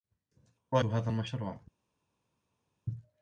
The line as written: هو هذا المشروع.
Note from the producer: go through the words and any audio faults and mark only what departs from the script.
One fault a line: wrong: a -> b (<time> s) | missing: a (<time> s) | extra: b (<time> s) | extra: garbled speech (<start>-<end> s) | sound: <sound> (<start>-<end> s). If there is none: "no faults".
no faults